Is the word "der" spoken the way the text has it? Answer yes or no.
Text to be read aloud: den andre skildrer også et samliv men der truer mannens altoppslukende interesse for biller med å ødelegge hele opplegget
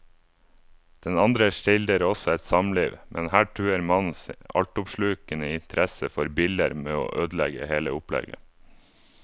no